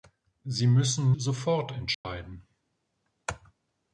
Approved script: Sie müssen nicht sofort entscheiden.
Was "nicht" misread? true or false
true